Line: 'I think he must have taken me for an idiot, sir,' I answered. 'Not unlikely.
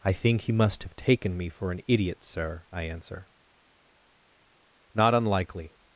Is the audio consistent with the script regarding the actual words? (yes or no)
no